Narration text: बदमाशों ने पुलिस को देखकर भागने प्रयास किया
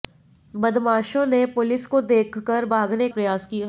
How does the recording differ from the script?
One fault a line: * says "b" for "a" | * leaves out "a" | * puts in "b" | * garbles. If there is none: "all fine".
all fine